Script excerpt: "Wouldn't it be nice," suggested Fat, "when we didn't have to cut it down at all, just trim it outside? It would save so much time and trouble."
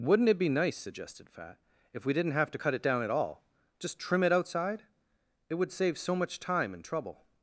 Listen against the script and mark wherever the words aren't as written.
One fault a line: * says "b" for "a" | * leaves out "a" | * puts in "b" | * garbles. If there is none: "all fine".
* says "if" for "when"